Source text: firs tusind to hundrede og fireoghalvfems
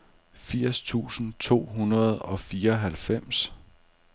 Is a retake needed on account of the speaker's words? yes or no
no